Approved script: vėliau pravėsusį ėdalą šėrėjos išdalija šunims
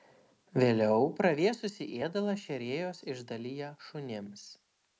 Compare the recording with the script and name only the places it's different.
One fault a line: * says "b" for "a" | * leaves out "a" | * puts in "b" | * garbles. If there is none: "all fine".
all fine